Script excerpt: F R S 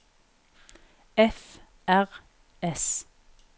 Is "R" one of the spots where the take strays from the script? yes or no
no